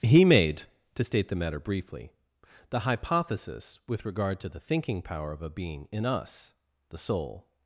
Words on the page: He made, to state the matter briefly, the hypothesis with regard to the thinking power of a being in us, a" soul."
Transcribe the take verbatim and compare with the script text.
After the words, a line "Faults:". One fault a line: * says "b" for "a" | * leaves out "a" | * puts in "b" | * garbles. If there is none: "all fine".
He made, to state the matter briefly, the hypothesis with regard to the thinking power of a being in us, the" soul."
Faults:
* says "the" for "a"